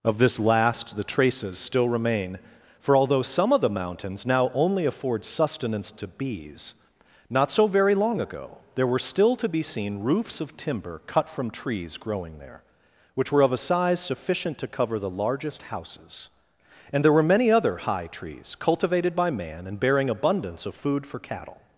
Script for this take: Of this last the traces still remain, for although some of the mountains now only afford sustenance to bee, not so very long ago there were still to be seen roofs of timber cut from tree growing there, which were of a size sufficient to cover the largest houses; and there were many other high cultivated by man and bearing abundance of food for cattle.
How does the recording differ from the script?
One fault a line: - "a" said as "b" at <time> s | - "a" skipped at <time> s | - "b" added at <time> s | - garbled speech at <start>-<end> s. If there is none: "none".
- "bee" said as "bees" at 6.1 s
- "tree" said as "trees" at 11.5 s
- "trees" added at 18.1 s